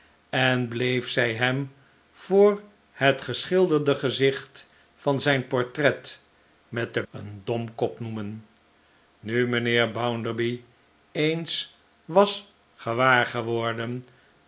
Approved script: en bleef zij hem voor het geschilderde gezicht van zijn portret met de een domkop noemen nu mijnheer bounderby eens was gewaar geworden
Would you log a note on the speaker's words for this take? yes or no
no